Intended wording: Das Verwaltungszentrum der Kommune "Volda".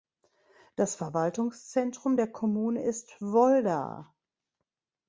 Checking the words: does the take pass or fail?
fail